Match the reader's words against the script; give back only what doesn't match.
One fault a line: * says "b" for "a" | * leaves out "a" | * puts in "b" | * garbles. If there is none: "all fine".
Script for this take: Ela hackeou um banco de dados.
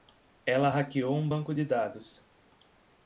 all fine